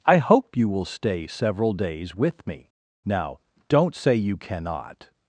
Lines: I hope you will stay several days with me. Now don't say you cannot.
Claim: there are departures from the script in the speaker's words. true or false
false